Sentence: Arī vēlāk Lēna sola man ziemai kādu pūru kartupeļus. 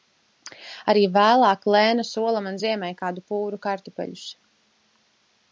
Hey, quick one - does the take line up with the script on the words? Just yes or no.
yes